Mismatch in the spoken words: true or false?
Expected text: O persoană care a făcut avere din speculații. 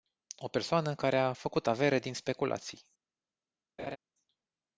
false